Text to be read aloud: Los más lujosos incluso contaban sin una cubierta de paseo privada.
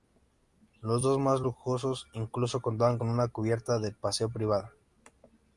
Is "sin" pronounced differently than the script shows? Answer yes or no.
yes